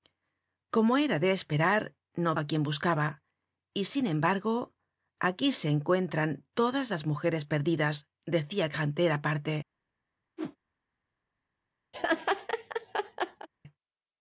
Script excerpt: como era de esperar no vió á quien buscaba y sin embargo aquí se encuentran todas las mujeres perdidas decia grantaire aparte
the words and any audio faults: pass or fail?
fail